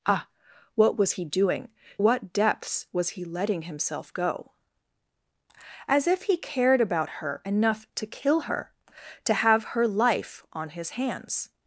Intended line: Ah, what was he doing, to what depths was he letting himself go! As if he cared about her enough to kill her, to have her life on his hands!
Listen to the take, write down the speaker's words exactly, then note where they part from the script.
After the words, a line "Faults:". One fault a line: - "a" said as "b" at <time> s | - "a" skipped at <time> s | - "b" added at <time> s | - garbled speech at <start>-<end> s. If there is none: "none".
Ah, what was he doing, what depths was he letting himself go! As if he cared about her enough to kill her, to have her life on his hands!
Faults:
- "to" skipped at 1.7 s